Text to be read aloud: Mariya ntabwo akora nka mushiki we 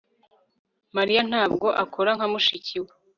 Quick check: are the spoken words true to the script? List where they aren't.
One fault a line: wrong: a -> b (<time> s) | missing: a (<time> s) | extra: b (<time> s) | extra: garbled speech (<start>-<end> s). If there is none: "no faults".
no faults